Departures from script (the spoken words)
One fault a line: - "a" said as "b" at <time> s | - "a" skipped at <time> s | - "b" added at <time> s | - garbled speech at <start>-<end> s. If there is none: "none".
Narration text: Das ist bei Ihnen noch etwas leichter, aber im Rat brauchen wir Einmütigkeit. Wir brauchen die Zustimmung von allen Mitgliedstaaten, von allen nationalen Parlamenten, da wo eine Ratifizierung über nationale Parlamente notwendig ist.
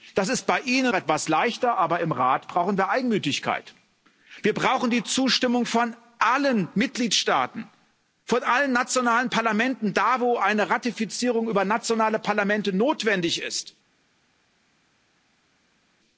- "noch" skipped at 0.9 s